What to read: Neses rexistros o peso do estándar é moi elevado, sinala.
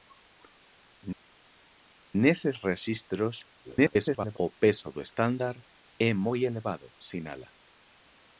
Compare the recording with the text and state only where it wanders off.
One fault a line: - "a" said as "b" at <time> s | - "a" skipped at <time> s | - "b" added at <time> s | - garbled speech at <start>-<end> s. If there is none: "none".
- garbled speech at 3.6-4.4 s